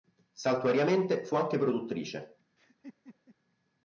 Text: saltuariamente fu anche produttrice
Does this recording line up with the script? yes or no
yes